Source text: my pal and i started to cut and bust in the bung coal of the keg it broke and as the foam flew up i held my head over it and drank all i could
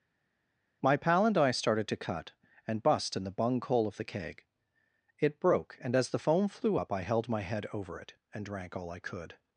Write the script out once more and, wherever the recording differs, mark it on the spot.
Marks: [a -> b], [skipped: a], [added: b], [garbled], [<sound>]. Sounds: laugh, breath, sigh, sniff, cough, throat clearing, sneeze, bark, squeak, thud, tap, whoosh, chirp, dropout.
my pal and i started to cut and bust in the bung coal of the keg it broke and as the foam flew up i held my head over it and drank all i could